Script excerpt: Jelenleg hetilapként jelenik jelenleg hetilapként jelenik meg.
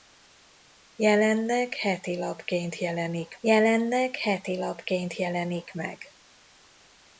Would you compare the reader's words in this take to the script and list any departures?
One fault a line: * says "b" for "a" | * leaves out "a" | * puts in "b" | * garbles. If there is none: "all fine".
all fine